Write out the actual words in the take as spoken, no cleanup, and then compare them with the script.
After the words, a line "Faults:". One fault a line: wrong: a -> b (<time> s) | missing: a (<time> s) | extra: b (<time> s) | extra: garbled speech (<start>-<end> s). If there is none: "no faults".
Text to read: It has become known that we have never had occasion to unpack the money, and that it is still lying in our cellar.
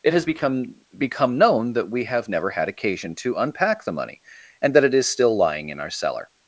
It has become become known that we have never had occasion to unpack the money, and that it is still lying in our cellar.
Faults:
extra: become (1.0 s)